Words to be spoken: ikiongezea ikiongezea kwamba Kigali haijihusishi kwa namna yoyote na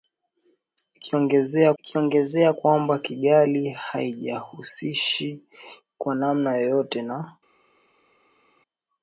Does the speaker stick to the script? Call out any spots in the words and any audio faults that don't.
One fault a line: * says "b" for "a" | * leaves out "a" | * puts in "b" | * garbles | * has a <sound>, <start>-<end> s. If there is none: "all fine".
all fine